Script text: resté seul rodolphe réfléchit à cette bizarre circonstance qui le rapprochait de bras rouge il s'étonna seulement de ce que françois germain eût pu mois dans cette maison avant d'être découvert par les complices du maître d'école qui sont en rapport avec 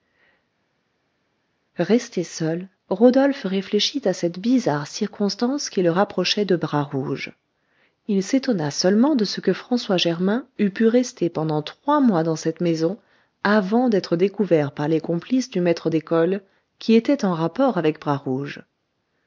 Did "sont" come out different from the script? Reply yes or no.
yes